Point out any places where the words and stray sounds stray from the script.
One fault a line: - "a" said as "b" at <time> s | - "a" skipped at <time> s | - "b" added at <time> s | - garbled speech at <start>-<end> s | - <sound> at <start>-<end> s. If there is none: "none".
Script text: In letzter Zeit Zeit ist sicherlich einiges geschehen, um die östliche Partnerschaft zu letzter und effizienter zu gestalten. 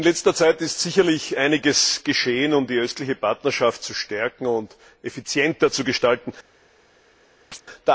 - "Zeit" skipped at 0.6 s
- "letzter" said as "stärken" at 3.9 s
- chirp at 7.5-7.6 s